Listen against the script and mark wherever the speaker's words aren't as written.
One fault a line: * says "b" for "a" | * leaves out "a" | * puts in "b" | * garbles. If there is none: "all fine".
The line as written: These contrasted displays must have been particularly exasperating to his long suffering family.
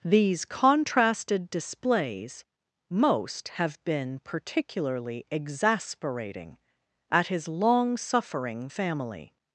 * says "most" for "must"
* says "at" for "to"